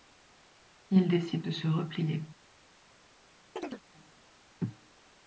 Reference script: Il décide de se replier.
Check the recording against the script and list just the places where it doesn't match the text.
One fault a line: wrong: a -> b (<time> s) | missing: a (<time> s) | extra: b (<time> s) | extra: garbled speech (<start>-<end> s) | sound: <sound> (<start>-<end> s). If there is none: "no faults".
sound: chirp (3.6-3.8 s)